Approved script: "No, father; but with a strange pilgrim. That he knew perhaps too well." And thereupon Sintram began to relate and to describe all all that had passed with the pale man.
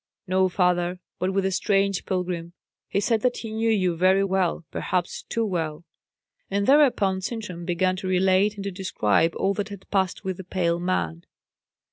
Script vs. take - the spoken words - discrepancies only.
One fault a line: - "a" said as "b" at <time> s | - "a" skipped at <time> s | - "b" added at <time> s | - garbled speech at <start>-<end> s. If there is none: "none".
- "He said" added at 2.9 s
- "you very well" added at 3.7 s
- "all" skipped at 9.5 s